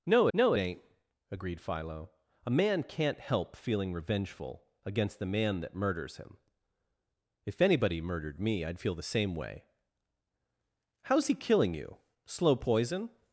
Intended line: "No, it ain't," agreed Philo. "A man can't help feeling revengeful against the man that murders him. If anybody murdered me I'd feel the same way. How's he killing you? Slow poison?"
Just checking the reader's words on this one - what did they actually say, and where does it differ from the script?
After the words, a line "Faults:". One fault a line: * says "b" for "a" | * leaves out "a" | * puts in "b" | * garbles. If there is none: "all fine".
"No no, it ain't," agreed Philo. "A man can't help feeling revengeful against the man that murders him. If anybody murdered me I'd feel the same way. How's he killing you? Slow poison?"
Faults:
* puts in "no"